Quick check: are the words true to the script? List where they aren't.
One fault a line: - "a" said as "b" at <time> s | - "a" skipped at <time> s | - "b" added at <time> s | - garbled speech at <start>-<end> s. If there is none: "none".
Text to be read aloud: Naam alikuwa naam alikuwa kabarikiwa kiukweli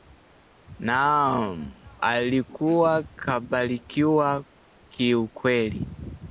- "naam alikuwa" skipped at 3.0 s